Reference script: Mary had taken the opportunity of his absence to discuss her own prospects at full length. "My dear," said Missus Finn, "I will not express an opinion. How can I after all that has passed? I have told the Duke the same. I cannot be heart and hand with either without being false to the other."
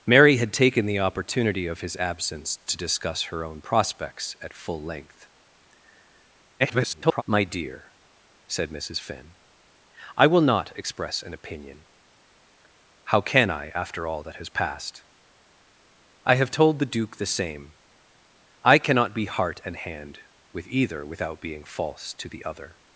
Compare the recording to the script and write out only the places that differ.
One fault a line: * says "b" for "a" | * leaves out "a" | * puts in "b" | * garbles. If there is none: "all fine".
* garbles